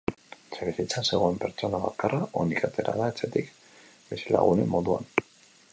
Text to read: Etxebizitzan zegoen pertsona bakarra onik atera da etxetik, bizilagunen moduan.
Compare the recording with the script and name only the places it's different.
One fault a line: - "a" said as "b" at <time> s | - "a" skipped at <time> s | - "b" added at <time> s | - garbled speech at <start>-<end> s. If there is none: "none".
none